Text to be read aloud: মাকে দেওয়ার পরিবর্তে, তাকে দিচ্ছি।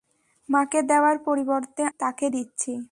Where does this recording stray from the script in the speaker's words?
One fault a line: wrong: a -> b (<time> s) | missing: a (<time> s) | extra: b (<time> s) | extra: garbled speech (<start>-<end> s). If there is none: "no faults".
no faults